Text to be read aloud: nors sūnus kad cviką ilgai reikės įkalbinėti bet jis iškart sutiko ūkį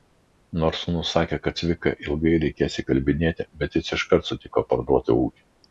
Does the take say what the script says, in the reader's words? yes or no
no